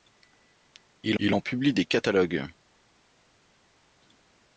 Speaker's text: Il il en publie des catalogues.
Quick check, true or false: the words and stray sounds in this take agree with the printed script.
true